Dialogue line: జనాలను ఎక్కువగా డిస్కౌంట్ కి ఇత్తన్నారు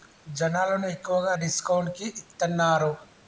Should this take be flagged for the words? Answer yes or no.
no